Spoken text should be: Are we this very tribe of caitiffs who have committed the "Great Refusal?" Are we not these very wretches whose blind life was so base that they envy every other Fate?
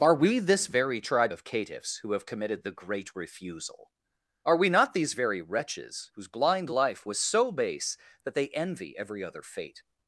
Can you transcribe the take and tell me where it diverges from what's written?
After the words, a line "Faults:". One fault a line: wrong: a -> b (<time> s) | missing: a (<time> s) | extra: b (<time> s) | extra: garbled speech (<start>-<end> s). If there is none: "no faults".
Are we this very tribe of caitiffs who have committed the "Great Refusal?" Are we not these very wretches whose blind life was so base that they envy every other Fate?
Faults:
no faults